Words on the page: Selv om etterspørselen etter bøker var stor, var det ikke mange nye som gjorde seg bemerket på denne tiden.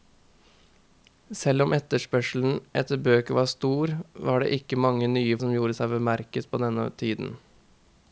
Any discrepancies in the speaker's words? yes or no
no